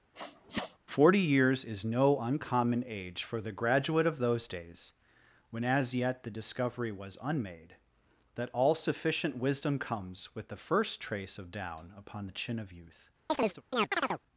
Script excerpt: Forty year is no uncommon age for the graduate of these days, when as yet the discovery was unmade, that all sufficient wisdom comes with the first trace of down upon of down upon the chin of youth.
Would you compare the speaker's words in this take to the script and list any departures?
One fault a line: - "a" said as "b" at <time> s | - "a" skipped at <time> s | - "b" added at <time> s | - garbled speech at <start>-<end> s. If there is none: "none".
- "year" said as "years" at 1.2 s
- "these" said as "those" at 4.2 s
- "of down upon" skipped at 12.3 s